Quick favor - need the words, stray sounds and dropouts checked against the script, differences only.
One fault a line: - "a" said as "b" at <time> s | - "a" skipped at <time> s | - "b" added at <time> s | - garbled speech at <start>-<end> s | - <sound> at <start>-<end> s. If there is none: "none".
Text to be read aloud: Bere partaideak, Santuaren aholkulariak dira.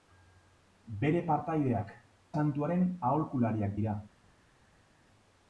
none